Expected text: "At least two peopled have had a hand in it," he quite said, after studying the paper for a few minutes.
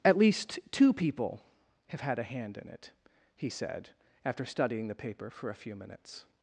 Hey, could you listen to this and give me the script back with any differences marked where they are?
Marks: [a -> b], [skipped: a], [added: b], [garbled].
"At least two [peopled -> people] have had a hand in it," he [skipped: quite] said, after studying the paper for a few minutes.